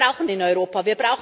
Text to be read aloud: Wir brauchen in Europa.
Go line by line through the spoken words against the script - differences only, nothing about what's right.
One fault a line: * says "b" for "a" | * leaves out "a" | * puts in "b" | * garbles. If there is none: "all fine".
all fine